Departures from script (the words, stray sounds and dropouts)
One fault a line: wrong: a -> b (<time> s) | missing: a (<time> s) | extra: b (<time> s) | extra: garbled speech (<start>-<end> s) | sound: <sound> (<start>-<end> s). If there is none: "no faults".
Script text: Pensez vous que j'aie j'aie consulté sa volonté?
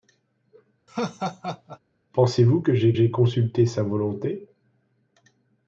sound: laugh (0.9-1.8 s)